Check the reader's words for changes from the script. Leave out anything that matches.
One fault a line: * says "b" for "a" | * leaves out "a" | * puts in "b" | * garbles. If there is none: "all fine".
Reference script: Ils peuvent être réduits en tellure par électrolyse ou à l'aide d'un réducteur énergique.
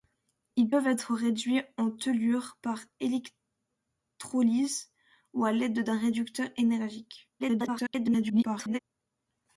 * garbles